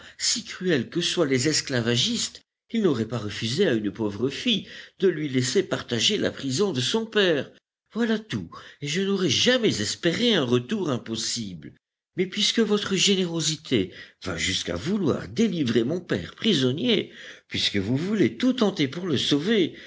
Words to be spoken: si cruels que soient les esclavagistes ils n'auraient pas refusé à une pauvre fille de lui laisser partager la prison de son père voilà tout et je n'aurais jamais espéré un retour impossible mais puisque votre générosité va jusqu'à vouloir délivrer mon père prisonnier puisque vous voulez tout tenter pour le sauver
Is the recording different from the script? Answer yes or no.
no